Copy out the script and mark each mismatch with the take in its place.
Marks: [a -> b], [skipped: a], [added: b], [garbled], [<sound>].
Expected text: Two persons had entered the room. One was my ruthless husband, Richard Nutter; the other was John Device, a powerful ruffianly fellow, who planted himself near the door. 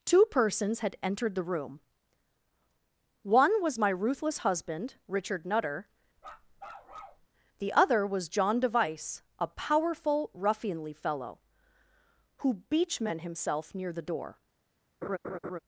Two persons had entered the room. One was my ruthless husband, Richard Nutter; [bark] the other was John Device, a powerful ruffianly fellow, who [planted -> beachmen] himself near the door. [laugh]